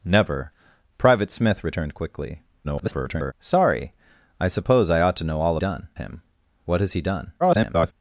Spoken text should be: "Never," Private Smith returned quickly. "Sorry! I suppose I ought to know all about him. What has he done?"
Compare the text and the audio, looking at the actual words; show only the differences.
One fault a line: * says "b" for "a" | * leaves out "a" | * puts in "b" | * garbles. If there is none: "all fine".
* garbles
* says "done" for "about"
* garbles